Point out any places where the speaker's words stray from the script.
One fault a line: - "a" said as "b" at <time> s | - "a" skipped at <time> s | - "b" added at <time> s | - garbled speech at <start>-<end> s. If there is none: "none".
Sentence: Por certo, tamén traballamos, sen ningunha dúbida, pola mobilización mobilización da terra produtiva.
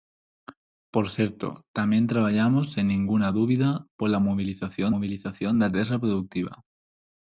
none